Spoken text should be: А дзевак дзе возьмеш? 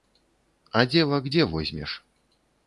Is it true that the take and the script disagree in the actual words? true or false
false